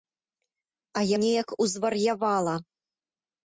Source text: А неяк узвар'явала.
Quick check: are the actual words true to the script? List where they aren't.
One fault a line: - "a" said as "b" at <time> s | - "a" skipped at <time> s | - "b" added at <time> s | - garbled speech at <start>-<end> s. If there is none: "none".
none